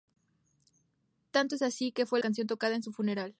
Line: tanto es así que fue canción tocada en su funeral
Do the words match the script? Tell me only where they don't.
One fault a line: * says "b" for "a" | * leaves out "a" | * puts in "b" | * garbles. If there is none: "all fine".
all fine